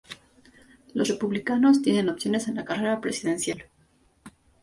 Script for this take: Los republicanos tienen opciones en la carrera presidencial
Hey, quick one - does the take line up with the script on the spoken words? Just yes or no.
yes